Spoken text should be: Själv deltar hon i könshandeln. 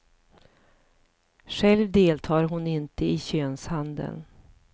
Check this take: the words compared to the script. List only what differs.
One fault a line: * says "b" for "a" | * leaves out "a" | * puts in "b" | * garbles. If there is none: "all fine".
* puts in "inte"